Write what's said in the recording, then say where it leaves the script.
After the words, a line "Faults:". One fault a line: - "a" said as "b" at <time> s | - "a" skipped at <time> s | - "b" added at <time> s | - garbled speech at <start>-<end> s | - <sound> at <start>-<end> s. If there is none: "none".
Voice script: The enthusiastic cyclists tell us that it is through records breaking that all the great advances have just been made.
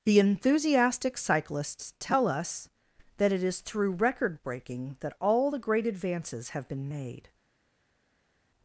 The enthusiastic cyclists tell us that it is through record breaking that all the great advances have been made.
Faults:
- "records" said as "record" at 3.9 s
- "just" skipped at 6.7 s